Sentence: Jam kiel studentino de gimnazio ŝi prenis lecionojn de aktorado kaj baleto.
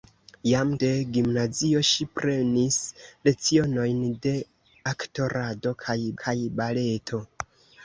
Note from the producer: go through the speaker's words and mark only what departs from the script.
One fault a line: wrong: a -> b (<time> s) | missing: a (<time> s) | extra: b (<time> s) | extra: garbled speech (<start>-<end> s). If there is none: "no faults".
missing: kiel studentino (0.7 s)
extra: kaj (6.2 s)